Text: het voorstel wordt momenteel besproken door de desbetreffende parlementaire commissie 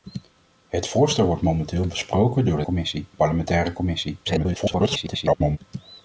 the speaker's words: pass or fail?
fail